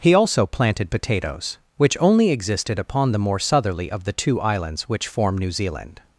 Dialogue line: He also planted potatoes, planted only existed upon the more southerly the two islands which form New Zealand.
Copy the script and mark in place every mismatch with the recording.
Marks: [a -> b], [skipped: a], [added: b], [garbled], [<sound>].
He also planted potatoes, [planted -> which] only existed upon the more southerly [added: of] the two islands which form New Zealand.